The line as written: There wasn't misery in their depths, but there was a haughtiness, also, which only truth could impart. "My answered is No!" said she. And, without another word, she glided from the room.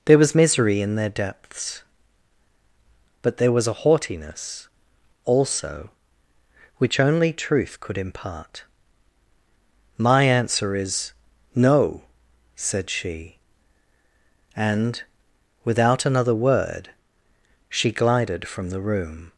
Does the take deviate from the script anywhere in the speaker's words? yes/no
yes